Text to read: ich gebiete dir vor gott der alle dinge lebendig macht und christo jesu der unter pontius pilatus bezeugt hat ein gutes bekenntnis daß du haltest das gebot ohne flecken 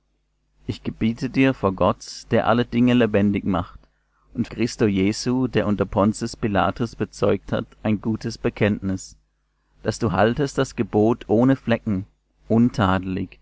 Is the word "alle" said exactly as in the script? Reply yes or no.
yes